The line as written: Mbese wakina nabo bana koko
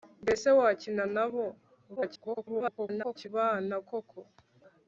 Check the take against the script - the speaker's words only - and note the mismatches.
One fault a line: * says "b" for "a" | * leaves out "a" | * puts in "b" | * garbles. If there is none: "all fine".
* garbles